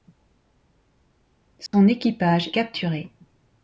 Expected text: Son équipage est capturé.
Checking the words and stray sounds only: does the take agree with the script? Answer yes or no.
no